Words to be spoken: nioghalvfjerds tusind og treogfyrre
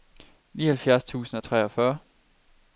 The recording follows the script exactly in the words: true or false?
true